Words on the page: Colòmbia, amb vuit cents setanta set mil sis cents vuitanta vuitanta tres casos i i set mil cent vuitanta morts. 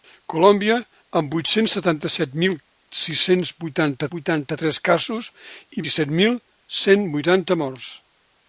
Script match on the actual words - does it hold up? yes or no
yes